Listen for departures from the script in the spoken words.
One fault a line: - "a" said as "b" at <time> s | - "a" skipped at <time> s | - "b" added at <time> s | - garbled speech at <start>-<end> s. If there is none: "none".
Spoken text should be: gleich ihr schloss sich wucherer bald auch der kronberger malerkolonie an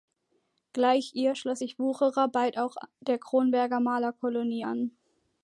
none